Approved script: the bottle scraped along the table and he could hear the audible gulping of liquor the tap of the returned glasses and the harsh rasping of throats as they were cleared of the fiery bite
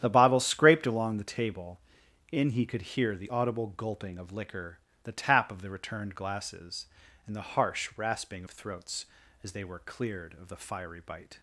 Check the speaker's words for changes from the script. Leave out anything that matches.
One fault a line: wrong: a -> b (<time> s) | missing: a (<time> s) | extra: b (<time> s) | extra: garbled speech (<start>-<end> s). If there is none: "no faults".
wrong: and -> in (2.3 s)